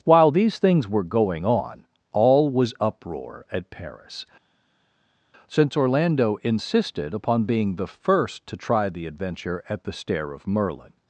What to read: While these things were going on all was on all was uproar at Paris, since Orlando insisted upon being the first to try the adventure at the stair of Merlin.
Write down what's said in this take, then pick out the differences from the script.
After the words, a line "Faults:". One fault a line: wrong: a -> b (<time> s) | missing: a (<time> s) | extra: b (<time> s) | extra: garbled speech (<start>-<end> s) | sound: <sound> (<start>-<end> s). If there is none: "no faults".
While these things were going on all was uproar at Paris, since Orlando insisted upon being the first to try the adventure at the stair of Merlin.
Faults:
missing: on all was (2.7 s)